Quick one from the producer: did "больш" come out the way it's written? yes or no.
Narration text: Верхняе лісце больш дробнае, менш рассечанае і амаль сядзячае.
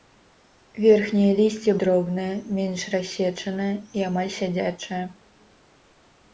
no